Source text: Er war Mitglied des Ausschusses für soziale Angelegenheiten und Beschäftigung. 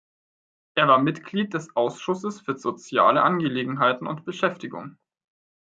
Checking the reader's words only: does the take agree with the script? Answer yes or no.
yes